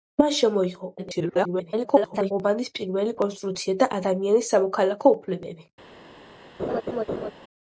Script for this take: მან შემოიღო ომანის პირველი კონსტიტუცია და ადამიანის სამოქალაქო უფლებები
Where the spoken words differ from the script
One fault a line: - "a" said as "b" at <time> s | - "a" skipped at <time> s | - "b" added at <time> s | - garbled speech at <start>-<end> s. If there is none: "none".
- garbled speech at 1.0-2.3 s